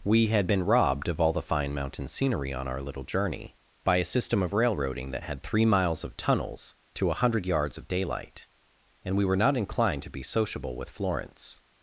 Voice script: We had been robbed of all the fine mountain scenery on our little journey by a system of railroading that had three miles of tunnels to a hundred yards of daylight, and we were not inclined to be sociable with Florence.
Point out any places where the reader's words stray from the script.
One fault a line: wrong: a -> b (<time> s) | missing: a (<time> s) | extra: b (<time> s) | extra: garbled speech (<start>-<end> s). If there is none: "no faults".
no faults